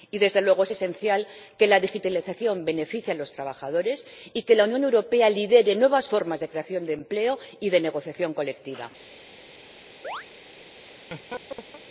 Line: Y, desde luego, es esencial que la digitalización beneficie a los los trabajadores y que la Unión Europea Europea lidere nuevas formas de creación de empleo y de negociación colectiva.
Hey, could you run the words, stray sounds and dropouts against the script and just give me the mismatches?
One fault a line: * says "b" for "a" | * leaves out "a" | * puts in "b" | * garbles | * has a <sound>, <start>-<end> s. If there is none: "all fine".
* leaves out "los"
* leaves out "Europea"
* has a chirp, 10.0-10.3 s
* has a laugh, 10.8-11.8 s